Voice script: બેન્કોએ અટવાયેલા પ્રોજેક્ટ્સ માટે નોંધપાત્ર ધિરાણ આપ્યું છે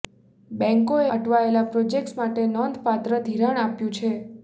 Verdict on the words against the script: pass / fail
pass